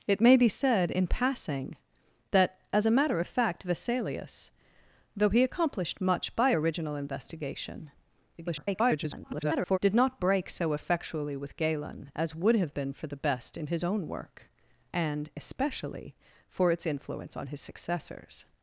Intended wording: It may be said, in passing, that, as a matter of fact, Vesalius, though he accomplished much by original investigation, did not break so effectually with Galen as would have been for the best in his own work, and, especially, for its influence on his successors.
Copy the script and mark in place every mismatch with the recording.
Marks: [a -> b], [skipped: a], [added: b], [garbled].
It may be said, in passing, that, as a matter of fact, Vesalius, though he accomplished much by original investigation, [garbled] did not break so effectually with Galen as would have been for the best in his own work, and, especially, for its influence on his successors.